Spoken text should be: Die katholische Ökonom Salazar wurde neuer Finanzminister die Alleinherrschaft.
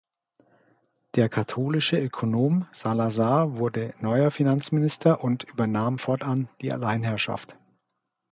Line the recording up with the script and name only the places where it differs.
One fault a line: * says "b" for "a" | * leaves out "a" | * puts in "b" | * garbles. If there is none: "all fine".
* says "Der" for "Die"
* puts in "und übernahm fortan"